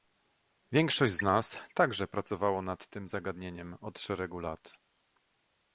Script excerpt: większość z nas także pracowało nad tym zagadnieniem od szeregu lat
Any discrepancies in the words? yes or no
no